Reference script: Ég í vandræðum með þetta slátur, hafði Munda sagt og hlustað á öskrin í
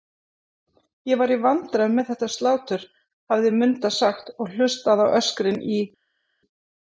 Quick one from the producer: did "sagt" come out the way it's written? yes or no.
yes